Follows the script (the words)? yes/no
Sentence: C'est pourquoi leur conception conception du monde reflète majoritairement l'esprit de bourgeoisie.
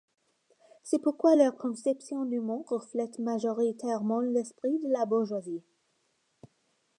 no